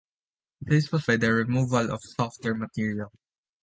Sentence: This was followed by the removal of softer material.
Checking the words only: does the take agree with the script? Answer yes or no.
no